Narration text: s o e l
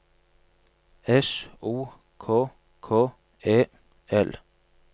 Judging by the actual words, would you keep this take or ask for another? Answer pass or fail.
fail